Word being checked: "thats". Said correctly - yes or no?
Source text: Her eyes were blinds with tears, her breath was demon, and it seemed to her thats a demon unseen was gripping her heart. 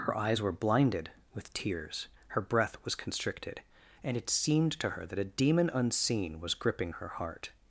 no